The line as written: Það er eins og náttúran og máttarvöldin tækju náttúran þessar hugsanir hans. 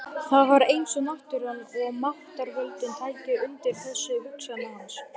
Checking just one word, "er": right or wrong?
wrong